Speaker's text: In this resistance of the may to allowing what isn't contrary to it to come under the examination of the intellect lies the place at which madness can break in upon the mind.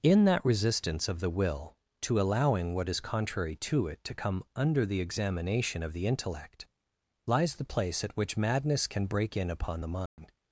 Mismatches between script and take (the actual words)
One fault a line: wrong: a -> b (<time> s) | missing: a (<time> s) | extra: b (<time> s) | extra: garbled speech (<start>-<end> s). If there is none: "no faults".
wrong: this -> that (0.2 s)
wrong: may -> will (1.3 s)
wrong: isn't -> is (2.9 s)